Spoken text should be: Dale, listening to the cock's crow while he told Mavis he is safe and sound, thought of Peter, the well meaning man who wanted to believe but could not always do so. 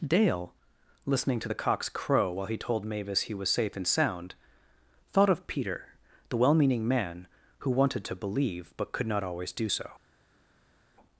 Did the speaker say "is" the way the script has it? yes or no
no